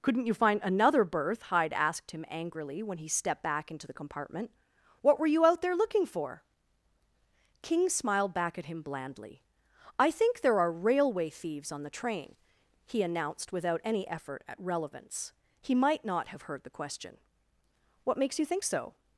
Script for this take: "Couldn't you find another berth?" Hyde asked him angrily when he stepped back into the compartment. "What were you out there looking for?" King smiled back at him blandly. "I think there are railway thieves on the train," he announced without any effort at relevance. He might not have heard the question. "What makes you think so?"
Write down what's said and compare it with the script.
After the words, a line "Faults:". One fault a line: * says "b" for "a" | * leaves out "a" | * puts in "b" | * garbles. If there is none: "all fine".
"Couldn't you find another berth?" Hyde asked him angrily when he stepped back into the compartment. "What were you out there looking for?" King smiled back at him blandly. "I think there are railway thieves on the train," he announced without any effort at relevance. He might not have heard the question. "What makes you think so?"
Faults:
all fine